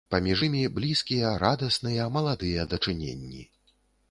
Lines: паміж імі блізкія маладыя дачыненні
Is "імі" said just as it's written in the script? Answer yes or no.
yes